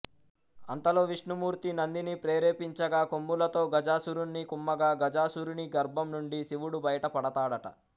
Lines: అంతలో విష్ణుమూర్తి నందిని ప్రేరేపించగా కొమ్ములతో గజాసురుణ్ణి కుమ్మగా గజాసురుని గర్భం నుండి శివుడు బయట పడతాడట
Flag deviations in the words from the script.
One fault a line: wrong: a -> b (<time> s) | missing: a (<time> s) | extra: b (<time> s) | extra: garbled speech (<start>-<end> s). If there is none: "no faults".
no faults